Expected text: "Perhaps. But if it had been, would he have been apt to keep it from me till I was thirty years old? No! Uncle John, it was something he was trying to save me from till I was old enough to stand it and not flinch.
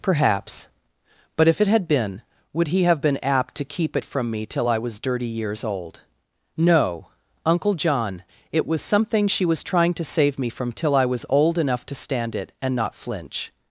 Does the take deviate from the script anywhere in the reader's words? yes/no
yes